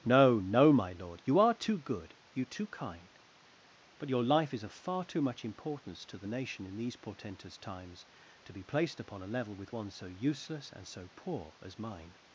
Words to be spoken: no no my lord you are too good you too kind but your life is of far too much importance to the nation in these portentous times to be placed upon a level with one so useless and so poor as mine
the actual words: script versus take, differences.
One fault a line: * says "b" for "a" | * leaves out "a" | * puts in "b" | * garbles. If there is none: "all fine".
all fine